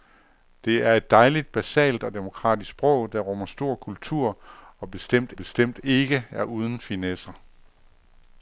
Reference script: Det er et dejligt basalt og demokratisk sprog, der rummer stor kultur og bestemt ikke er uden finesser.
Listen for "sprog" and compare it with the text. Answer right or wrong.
right